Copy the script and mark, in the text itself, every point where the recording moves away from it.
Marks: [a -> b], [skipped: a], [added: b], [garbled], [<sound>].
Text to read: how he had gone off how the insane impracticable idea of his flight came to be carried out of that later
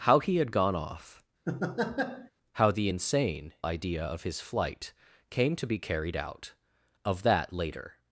how he had gone off [laugh] how the insane [skipped: impracticable] idea of his flight came to be carried out of that later